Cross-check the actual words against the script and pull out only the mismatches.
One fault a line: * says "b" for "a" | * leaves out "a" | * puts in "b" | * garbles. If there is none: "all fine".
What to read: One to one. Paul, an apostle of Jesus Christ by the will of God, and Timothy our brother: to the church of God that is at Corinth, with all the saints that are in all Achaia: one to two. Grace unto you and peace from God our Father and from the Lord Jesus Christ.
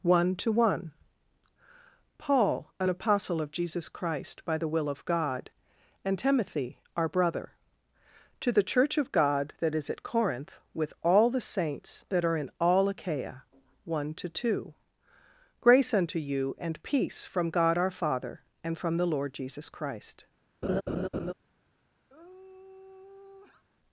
all fine